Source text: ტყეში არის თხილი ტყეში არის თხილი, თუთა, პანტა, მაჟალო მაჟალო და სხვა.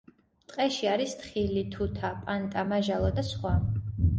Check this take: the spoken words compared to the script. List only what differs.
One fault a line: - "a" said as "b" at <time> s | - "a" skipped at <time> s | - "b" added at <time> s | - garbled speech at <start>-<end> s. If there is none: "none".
- "ტყეში არის თხილი" skipped at 1.6 s
- "მაჟალო" skipped at 3.1 s